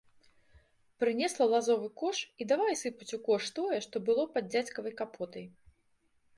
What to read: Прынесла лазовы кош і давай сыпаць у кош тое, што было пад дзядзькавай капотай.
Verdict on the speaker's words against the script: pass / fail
pass